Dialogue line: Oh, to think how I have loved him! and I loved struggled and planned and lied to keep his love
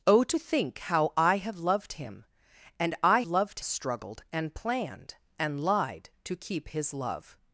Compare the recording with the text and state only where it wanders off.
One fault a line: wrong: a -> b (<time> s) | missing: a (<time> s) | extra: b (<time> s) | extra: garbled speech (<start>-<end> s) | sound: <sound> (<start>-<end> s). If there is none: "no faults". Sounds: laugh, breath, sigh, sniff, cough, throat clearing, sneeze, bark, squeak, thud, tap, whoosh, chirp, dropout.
no faults